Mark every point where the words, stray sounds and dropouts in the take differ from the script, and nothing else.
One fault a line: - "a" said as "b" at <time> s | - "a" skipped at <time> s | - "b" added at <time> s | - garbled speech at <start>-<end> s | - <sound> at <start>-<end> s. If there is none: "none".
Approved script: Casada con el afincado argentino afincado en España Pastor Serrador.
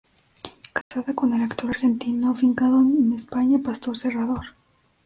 - dropout at 0.8-0.9 s
- "afincado" said as "actor" at 1.4 s